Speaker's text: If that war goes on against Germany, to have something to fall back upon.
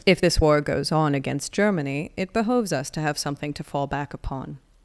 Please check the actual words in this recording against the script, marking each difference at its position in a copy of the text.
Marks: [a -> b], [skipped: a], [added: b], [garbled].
If [that -> this] war goes on against Germany, [added: it behoves us] to have something to fall back upon.